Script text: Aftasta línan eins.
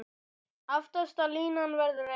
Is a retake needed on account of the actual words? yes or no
yes